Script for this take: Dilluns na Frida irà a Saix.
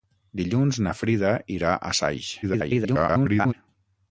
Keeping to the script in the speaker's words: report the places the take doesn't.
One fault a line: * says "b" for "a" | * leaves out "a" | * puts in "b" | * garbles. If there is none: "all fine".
* garbles